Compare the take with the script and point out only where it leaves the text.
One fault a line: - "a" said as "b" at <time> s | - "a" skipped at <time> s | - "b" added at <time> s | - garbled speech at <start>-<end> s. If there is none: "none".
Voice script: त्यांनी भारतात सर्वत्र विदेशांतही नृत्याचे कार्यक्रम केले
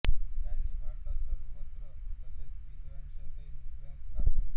- "तसेच" added at 2.2 s